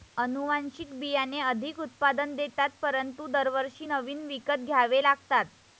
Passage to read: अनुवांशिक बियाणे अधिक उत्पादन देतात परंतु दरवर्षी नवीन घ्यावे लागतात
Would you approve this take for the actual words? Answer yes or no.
no